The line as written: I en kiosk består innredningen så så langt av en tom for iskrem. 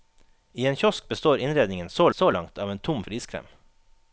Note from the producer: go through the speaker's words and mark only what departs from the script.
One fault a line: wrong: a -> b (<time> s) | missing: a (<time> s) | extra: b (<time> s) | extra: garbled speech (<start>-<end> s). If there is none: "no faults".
no faults